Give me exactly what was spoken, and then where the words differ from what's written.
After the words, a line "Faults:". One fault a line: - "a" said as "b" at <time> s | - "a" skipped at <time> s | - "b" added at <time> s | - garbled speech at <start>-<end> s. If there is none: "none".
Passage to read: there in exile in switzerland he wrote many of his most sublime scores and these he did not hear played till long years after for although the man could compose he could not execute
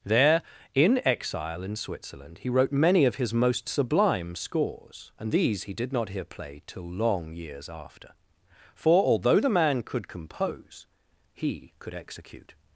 there in exile in switzerland he wrote many of his most sublime scores and these he did not hear played till long years after for although the man could compose he could execute
Faults:
- "not" skipped at 11.9 s